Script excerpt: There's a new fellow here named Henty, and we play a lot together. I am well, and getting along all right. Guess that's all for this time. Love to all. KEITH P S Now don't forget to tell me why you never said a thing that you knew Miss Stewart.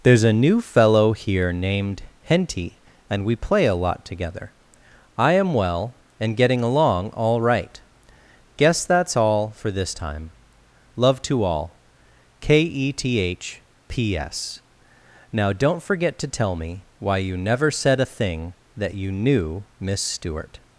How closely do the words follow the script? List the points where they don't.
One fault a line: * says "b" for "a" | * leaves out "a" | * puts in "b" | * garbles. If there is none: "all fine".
* says "K e t h" for "KEITH"